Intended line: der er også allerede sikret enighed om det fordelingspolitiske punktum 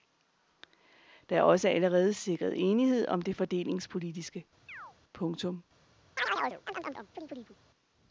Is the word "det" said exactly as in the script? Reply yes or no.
yes